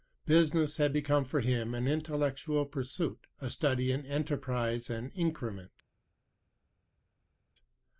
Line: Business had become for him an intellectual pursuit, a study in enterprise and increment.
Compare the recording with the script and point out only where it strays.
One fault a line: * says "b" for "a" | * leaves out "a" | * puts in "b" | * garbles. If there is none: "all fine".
all fine